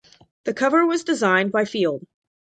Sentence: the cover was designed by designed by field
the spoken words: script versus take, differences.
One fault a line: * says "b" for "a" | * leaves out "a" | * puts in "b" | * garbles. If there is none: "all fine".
* leaves out "designed by"